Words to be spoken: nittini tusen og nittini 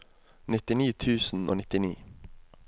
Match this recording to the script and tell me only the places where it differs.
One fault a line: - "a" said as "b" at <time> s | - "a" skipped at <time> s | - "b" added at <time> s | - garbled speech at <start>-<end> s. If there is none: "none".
none